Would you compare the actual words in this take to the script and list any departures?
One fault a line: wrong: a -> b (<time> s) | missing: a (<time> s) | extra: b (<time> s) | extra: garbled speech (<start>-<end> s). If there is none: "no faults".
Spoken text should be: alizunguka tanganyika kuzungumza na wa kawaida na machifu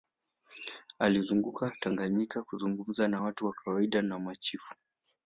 extra: watu (3.2 s)